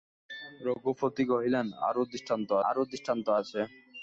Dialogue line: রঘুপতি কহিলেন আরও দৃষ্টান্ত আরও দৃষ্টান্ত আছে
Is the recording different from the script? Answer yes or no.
no